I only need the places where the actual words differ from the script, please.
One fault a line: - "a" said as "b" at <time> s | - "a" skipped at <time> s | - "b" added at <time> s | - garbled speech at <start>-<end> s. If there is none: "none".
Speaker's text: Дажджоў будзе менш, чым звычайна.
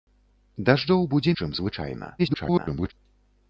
- "менш" skipped at 1.3 s
- garbled speech at 2.2-2.9 s